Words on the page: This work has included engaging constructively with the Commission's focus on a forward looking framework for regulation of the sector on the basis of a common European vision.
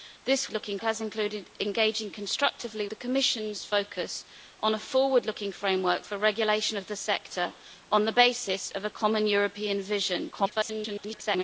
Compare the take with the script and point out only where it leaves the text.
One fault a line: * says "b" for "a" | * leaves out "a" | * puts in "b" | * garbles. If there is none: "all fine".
* says "looking" for "work"
* leaves out "with"
* garbles